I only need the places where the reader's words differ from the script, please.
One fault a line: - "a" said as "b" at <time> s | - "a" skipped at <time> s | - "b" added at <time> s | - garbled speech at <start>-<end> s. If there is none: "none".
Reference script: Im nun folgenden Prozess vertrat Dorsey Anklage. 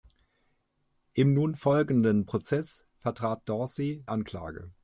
none